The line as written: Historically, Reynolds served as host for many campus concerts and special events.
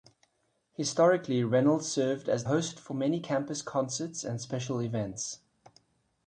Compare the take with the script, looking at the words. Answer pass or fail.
pass